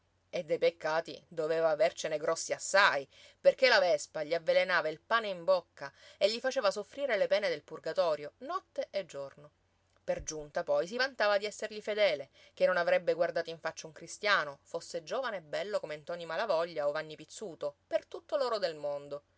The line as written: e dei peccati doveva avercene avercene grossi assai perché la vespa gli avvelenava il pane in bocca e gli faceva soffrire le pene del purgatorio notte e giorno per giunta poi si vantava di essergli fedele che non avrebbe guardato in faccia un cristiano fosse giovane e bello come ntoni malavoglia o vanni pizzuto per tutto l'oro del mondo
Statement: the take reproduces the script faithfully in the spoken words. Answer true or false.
false